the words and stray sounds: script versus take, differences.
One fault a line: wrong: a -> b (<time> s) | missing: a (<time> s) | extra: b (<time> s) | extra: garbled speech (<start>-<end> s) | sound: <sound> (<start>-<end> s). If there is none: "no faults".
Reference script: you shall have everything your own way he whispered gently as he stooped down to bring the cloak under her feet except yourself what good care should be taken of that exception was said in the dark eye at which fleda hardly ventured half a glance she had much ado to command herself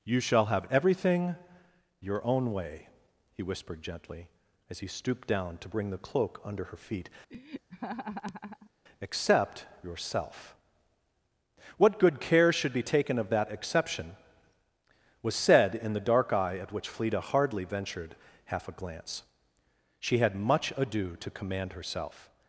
sound: laugh (7.3-8.7 s)